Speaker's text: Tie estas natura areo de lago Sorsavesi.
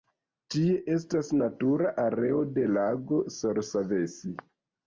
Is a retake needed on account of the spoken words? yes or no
no